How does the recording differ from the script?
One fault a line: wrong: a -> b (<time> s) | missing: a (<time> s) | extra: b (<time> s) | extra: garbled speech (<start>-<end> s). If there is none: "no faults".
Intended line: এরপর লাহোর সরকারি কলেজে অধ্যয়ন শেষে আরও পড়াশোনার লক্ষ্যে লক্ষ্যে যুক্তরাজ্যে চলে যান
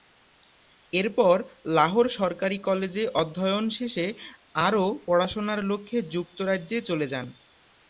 missing: লক্ষ্যে (6.0 s)